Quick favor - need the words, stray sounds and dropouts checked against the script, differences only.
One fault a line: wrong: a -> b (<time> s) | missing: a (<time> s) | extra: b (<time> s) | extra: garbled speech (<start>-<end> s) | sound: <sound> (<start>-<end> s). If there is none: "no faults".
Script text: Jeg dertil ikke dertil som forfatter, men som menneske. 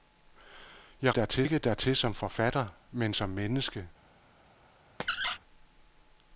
sound: squeak (5.0-5.4 s)